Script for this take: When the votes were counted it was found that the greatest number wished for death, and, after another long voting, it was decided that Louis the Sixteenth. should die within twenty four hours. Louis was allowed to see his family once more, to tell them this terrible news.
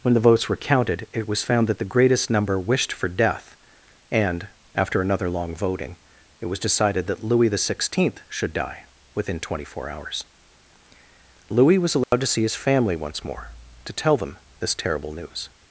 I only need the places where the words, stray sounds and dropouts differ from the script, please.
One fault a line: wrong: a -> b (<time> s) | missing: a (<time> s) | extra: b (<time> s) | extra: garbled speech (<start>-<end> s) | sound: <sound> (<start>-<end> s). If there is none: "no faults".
sound: dropout (12.0-12.1 s)